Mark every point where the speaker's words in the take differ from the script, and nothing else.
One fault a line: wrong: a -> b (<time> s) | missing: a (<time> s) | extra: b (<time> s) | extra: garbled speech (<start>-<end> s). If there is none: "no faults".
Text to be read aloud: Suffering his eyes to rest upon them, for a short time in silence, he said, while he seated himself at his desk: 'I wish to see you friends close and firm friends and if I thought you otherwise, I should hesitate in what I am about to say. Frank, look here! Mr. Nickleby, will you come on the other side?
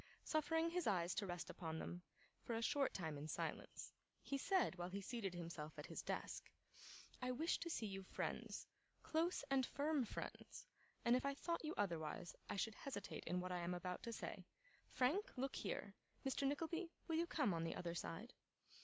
no faults